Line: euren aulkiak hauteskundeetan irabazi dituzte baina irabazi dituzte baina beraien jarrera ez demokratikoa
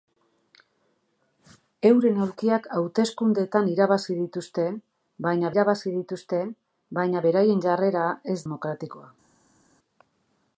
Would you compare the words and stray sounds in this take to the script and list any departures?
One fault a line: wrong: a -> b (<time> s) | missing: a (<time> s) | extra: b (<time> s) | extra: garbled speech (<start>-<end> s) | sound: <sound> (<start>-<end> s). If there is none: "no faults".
no faults